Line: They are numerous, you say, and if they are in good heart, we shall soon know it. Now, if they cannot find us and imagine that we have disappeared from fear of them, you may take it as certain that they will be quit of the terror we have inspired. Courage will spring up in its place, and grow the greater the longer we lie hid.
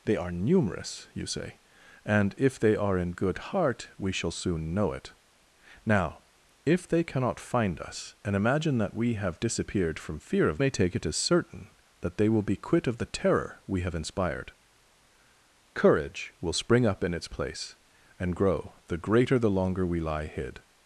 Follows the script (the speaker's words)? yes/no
no